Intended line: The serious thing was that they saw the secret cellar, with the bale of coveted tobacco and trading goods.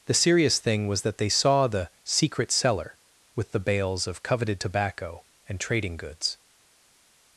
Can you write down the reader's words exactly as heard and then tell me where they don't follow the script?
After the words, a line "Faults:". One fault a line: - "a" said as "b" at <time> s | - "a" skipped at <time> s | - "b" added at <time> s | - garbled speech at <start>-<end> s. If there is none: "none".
The serious thing was that they saw the secret cellar, with the bales of coveted tobacco and trading goods.
Faults:
- "bale" said as "bales" at 3.6 s